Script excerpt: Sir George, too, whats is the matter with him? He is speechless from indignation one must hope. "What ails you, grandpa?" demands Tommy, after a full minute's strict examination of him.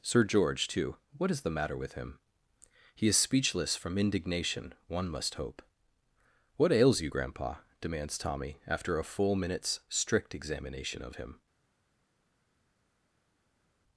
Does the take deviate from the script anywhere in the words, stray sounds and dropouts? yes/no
yes